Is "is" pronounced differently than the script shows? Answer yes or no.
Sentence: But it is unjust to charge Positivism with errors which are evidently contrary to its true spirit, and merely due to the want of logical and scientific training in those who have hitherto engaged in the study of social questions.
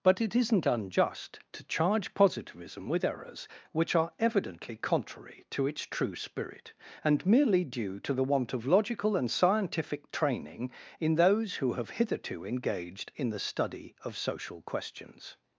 yes